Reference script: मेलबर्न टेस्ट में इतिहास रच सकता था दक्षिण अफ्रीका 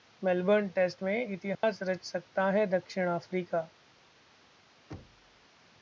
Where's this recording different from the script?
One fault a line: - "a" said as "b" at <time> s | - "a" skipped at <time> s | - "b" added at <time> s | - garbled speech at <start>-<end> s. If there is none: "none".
- "था" said as "है" at 2.5 s